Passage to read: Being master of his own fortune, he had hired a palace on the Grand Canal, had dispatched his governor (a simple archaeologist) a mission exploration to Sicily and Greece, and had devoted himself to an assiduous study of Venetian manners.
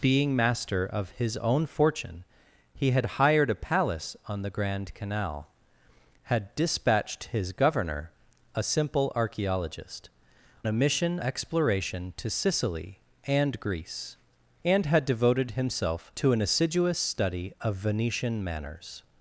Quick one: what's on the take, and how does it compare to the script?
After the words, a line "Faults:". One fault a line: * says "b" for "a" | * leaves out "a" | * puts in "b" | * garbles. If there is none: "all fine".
Being master of his own fortune, he had hired a palace on the Grand Canal, had dispatched his governor (a simple archaeologist) a mission exploration to Sicily and Greece, and had devoted himself to an assiduous study of Venetian manners.
Faults:
all fine